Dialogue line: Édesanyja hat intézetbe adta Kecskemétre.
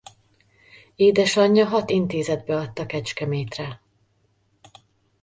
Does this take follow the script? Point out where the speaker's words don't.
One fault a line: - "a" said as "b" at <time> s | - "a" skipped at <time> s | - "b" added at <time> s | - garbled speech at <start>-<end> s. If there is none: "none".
none